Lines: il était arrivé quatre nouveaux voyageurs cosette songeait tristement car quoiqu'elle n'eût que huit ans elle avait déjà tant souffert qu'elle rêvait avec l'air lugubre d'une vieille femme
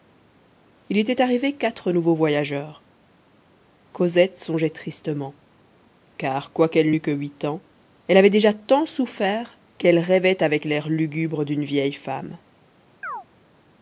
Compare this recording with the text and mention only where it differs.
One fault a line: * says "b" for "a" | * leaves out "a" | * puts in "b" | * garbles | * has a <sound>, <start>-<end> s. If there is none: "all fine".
* has a chirp, 13.0-13.2 s